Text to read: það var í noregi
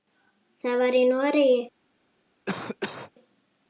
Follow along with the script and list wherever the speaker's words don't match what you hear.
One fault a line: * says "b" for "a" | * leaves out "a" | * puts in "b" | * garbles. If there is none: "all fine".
all fine